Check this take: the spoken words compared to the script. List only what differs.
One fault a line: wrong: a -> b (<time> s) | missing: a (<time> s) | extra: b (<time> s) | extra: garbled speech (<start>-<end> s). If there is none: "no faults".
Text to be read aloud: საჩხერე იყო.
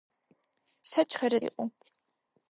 no faults